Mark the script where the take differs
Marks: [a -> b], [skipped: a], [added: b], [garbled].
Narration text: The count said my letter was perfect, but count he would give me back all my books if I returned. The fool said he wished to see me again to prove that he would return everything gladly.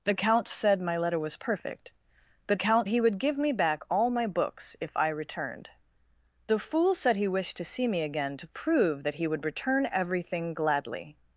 The count said my letter was perfect, but count he would give me back all my books if I returned. The fool said he wished to see me again to prove that he would return everything gladly.